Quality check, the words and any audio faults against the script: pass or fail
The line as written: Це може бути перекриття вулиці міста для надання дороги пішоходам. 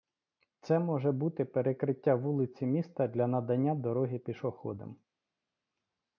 pass